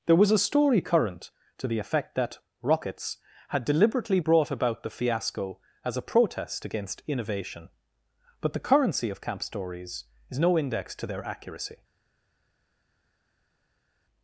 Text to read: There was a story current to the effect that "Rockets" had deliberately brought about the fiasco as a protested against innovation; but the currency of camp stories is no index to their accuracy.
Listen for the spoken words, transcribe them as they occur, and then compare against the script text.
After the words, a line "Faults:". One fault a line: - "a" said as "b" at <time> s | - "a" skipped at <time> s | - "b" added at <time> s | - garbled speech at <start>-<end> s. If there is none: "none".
There was a story current to the effect that "Rockets" had deliberately brought about the fiasco as a protest against innovation; but the currency of camp stories is no index to their accuracy.
Faults:
- "protested" said as "protest" at 6.0 s